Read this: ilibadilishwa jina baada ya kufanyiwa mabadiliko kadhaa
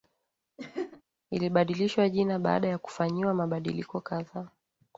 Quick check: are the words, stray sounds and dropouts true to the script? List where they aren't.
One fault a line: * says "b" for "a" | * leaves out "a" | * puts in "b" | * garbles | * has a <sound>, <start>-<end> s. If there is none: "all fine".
* has a laugh, 0.6-1.0 s